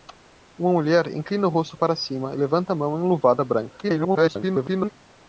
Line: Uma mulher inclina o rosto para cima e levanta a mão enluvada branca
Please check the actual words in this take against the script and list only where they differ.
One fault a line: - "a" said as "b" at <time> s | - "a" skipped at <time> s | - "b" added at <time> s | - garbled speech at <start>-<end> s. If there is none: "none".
- garbled speech at 3.8-4.9 s